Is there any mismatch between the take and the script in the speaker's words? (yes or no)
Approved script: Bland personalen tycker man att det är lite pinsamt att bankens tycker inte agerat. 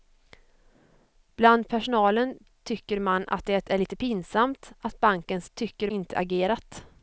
no